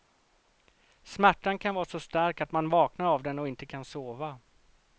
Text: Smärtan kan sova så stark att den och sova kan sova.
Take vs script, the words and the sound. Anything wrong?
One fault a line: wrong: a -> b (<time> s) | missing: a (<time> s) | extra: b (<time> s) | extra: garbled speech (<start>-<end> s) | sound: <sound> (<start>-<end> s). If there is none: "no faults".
wrong: sova -> vara (1.8 s)
extra: man vaknar av (2.5 s)
wrong: sova -> inte (3.5 s)